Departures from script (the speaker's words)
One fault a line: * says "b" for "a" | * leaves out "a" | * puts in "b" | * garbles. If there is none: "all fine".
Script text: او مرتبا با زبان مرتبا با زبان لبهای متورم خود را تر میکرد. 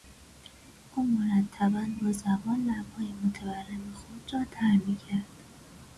* leaves out "مرتبا با زبان"